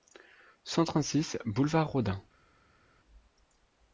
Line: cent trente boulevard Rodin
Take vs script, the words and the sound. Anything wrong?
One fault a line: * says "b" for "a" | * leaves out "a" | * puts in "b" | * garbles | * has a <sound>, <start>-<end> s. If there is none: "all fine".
* puts in "six"